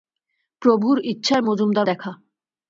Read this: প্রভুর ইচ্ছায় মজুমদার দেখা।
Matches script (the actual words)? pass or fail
pass